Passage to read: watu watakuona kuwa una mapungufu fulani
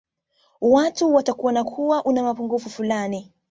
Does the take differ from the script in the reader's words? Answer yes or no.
no